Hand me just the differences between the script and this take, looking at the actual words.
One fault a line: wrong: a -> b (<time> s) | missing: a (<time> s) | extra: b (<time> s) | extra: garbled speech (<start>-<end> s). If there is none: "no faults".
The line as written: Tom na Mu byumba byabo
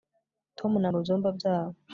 no faults